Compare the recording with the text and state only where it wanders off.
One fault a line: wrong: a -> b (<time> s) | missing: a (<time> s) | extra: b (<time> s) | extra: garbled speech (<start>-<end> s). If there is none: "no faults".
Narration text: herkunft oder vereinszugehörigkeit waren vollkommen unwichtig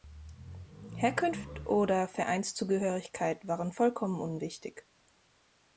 no faults